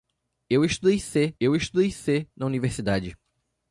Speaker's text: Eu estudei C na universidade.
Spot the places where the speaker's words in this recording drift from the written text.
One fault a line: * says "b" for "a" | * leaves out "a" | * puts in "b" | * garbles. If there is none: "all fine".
* puts in "eu estudei C"